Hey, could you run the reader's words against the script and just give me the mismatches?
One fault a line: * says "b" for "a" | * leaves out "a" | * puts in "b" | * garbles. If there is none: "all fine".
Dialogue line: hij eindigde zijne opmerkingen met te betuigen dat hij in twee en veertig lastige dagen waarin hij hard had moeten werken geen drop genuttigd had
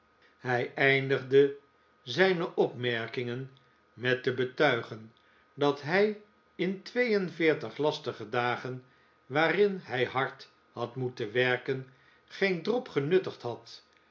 all fine